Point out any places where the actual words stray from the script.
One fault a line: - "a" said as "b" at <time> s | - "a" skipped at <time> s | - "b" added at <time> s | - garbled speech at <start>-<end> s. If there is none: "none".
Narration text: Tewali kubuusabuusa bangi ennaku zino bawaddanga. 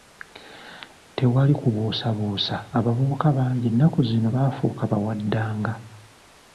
- "abavubuka" added at 2.8 s
- "baafuuka" added at 4.3 s